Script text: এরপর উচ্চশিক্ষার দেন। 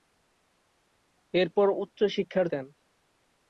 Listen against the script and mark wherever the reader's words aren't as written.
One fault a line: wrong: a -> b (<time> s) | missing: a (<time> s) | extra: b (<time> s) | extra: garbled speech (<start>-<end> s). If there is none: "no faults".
no faults